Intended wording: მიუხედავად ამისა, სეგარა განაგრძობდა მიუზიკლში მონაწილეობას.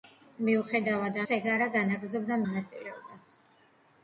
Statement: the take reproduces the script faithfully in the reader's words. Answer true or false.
false